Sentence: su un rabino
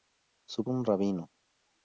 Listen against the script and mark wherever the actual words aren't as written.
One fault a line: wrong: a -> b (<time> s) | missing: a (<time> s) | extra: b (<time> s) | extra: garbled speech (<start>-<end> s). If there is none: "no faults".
no faults